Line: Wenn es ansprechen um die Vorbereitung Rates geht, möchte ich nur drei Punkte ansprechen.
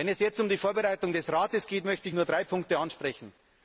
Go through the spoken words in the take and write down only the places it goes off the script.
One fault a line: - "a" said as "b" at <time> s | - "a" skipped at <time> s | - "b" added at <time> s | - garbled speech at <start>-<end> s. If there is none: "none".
- "ansprechen" said as "jetzt" at 0.2 s
- "des" added at 1.1 s